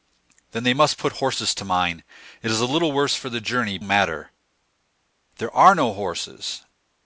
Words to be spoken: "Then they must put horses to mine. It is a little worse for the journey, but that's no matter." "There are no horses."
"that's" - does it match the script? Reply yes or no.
no